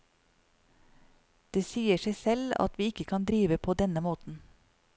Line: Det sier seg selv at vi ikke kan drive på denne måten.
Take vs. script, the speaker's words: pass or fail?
pass